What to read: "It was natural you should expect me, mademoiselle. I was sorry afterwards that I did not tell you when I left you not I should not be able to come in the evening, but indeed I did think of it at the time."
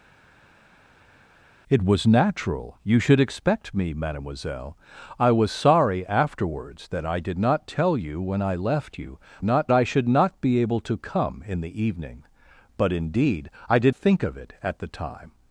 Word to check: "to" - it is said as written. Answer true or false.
true